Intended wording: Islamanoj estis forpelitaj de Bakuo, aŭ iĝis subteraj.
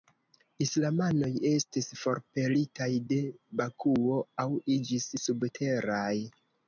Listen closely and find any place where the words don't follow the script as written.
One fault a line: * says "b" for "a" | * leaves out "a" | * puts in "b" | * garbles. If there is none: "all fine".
all fine